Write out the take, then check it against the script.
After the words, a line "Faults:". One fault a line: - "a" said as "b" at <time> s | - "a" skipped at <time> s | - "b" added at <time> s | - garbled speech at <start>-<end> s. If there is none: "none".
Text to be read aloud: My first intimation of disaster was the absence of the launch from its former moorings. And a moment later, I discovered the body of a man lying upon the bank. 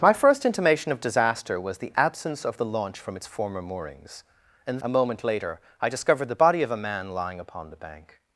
My first intimation of disaster was the absence of the launch from its former moorings. And a moment later, I discovered the body of a man lying upon the bank.
Faults:
none